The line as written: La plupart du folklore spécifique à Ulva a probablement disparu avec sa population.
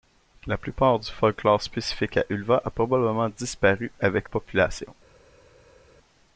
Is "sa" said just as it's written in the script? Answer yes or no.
no